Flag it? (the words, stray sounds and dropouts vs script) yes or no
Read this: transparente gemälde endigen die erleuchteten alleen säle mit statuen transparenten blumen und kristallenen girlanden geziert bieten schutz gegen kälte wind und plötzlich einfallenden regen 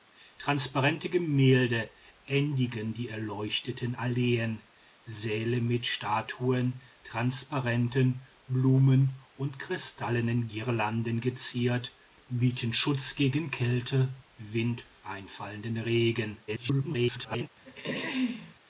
yes